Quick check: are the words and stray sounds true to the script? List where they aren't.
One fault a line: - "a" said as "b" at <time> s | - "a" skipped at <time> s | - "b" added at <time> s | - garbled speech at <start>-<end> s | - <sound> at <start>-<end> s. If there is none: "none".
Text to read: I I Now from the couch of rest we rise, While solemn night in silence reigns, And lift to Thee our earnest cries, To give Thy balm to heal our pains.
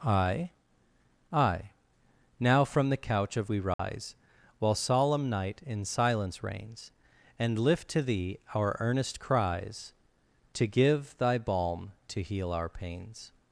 - "rest" skipped at 3.5 s
- dropout at 3.7-3.8 s